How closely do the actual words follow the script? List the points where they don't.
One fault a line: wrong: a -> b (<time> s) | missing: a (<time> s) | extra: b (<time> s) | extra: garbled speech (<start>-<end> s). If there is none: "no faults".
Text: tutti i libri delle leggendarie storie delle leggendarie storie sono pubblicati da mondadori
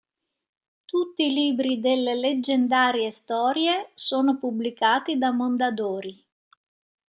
missing: delle leggendarie storie (3.9 s)